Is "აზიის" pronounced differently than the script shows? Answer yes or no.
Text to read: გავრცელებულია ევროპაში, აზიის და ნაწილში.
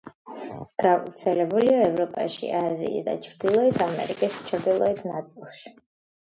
no